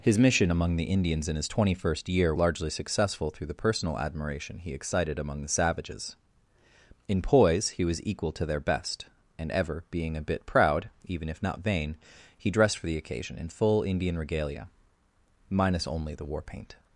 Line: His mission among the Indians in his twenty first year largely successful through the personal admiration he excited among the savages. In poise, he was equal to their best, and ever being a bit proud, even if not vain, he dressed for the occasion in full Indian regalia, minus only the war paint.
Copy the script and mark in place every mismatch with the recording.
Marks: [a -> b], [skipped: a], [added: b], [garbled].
His mission among the Indians in his twenty first year largely successful through the personal admiration he excited among the savages. In poise, he was equal to their best, and ever being a bit proud, even if not vain, he dressed for the occasion in full Indian regalia, minus only the war paint.